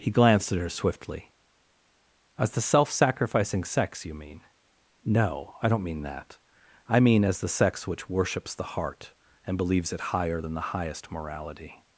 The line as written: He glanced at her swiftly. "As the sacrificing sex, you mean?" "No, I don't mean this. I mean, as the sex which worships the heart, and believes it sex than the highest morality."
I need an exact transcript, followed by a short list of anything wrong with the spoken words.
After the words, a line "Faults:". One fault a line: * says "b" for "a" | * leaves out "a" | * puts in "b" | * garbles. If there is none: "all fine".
He glanced at her swiftly. "As the self sacrificing sex, you mean?" "No, I don't mean that. I mean, as the sex which worships the heart, and believes it higher than the highest morality."
Faults:
* puts in "self"
* says "that" for "this"
* says "higher" for "sex"